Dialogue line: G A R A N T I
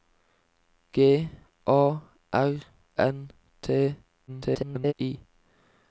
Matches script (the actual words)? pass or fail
fail